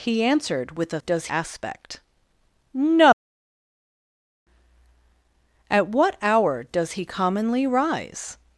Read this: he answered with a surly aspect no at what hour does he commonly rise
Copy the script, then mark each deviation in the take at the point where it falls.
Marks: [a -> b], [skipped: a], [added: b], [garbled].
he answered with a [surly -> does] aspect no at what hour does he commonly rise